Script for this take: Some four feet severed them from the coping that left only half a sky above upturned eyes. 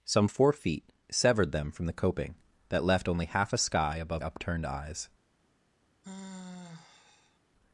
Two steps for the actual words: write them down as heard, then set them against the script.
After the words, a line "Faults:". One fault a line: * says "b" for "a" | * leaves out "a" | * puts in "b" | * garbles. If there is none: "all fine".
Some four feet severed them from the coping that left only half a sky above upturned eyes.
Faults:
all fine